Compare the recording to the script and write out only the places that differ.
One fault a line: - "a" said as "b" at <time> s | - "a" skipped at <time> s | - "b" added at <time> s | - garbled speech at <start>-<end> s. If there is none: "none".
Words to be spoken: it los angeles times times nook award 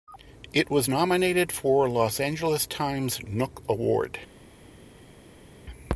- "was nominated for" added at 0.7 s
- "times" skipped at 3.2 s